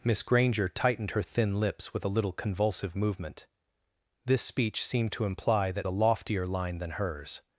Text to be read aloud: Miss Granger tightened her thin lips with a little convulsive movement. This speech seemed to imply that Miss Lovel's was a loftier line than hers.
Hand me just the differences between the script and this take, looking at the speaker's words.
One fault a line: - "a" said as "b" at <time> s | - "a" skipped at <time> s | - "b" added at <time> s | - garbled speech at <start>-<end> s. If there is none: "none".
- "Miss Lovel's was" skipped at 5.9 s